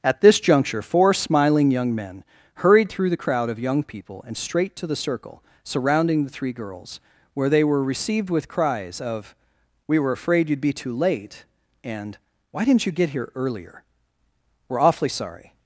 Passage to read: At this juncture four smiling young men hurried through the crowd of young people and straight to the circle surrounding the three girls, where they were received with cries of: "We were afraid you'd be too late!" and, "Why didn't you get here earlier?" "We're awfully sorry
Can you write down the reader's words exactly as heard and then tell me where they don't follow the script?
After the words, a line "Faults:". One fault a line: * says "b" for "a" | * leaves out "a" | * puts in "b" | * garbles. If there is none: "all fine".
At this juncture four smiling young men hurried through the crowd of young people and straight to the circle surrounding the three girls, where they were received with cries of: "We were afraid you'd be too late!" and, "Why didn't you get here earlier?" "We're awfully sorry
Faults:
all fine